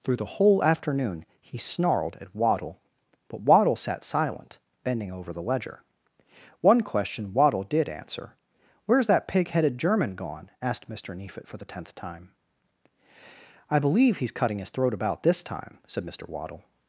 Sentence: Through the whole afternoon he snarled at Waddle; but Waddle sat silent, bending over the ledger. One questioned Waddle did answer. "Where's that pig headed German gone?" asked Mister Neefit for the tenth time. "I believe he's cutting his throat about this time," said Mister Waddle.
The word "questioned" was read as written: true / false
false